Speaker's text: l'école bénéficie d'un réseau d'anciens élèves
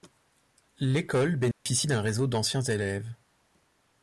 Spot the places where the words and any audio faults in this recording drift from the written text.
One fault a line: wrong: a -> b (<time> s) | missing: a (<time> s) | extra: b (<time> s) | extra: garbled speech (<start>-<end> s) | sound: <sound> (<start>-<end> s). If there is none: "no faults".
sound: dropout (1.5-1.7 s)